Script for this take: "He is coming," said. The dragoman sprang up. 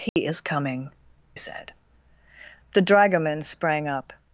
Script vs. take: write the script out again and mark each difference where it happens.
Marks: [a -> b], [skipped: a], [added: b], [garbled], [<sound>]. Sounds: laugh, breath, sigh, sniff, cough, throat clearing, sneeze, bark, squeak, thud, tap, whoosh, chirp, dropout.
"He [dropout] is coming," said. The dragoman sprang up.